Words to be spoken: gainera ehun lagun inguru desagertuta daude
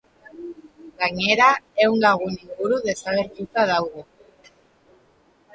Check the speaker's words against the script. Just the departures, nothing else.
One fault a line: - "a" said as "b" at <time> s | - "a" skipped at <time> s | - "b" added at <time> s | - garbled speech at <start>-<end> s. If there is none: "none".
none